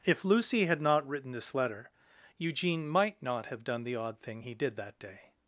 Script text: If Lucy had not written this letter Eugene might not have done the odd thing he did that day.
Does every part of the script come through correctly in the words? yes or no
yes